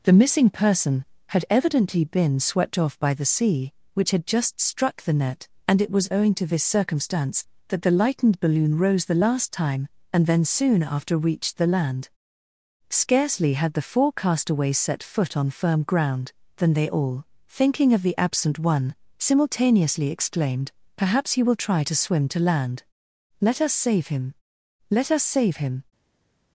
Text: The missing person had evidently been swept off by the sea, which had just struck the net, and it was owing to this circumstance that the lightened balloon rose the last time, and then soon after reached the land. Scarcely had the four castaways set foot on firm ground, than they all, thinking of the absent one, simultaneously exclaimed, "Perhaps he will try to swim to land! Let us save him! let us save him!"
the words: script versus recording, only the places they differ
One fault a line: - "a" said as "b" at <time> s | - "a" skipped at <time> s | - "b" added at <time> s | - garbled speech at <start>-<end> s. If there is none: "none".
none